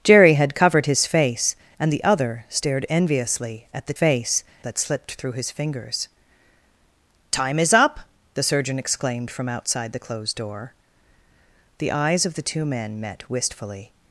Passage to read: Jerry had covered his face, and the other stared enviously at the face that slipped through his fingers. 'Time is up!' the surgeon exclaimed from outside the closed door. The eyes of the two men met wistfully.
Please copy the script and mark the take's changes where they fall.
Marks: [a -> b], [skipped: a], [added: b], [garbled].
Jerry had covered his face, and the other stared enviously at the face that slipped through his fingers. 'Time is up!' the surgeon exclaimed from outside the closed door. The eyes of the two men met wistfully.